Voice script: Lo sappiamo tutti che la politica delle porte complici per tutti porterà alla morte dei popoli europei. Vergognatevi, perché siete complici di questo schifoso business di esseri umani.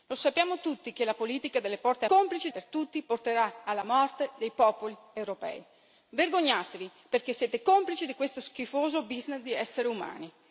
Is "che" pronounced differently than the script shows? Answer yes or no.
no